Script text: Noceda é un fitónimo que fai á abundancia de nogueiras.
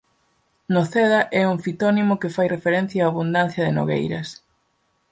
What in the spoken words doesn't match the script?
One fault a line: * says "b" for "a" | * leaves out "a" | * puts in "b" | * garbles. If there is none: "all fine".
* puts in "referencia"